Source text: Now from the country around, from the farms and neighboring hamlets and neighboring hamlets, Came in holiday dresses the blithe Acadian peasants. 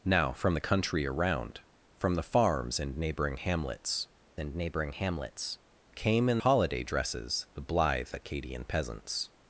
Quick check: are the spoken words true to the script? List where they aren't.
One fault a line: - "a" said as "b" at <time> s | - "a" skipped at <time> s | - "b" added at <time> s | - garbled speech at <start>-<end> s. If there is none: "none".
none